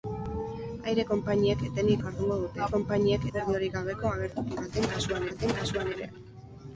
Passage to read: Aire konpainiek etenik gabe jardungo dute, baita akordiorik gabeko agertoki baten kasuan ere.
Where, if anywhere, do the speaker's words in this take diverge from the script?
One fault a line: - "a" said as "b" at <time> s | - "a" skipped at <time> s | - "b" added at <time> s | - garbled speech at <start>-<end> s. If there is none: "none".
- "gabe" skipped at 2.0 s
- "baita" said as "konpainiek" at 2.7 s
- "baten kasuan" added at 5.3 s